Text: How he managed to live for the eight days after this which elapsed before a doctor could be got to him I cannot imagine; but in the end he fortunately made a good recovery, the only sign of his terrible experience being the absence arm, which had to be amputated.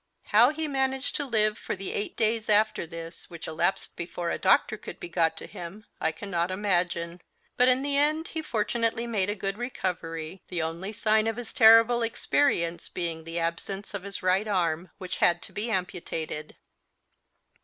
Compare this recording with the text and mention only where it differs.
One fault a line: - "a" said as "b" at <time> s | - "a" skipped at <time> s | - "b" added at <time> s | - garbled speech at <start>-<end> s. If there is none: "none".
- "of his right" added at 13.9 s